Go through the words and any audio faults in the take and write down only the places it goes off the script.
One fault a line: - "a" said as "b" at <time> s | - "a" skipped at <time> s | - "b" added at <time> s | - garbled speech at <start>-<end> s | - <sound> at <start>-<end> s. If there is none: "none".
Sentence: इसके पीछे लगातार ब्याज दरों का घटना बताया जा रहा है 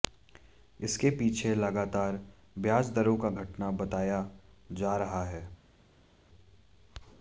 none